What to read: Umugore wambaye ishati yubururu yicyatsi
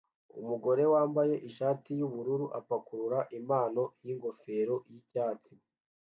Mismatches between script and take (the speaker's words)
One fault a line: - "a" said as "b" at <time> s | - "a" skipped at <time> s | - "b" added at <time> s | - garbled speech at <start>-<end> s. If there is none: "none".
- "apakurura impano yingofero" added at 2.6 s